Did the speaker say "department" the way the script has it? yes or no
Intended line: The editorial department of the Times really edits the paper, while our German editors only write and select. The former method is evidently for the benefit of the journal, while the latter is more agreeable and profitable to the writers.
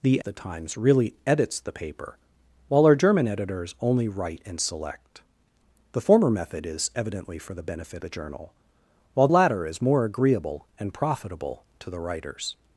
no